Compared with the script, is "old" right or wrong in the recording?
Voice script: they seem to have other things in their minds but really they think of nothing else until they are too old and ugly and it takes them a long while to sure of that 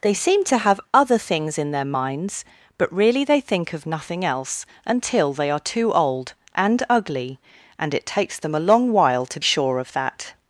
right